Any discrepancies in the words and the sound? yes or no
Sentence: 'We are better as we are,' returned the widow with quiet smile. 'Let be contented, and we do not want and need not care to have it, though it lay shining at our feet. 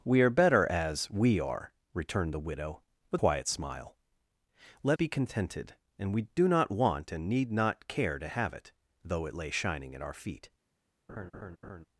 yes